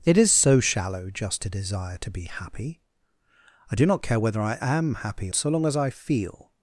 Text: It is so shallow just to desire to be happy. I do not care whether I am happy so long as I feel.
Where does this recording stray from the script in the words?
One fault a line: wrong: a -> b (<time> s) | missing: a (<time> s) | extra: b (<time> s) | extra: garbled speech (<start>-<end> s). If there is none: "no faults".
no faults